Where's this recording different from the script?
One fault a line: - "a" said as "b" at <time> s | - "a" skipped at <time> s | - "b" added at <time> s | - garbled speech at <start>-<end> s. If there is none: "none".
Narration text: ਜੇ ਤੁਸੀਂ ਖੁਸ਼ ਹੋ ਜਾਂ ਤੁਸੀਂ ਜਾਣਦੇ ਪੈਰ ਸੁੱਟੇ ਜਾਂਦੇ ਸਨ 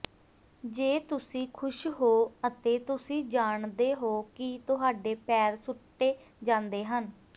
- "ਜਾਂ" said as "ਅਤੇ" at 2.5 s
- "ਹੋ ਕਿ ਤੁਹਾਡੇ" added at 4.0 s
- "ਸਨ" said as "ਹਨ" at 6.8 s